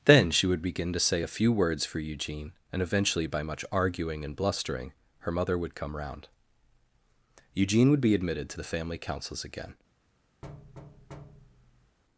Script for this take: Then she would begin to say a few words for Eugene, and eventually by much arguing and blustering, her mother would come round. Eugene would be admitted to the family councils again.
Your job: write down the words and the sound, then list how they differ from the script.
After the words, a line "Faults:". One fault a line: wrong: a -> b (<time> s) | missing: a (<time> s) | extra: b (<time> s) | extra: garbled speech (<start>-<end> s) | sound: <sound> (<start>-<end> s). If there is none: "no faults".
Then she would begin to say a few words for Eugene, and eventually by much arguing and blustering, her mother would come round. Eugene would be admitted to the family councils again.
Faults:
sound: thud (10.4-12.0 s)